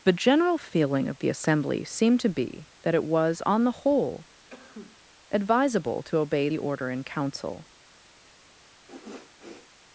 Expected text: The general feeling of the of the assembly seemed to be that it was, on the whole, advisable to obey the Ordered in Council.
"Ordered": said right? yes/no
no